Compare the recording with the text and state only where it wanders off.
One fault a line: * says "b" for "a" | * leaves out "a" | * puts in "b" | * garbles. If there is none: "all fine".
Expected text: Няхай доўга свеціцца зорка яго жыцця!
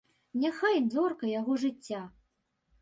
* leaves out "доўга свеціцца"